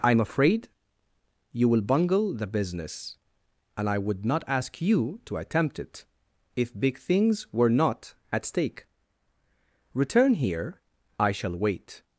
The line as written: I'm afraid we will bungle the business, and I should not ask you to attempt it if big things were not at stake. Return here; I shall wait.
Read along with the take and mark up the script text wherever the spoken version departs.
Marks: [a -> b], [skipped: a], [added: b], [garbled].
I'm afraid [we -> you] will bungle the business, and I [should -> would] not ask you to attempt it if big things were not at stake. Return here; I shall wait.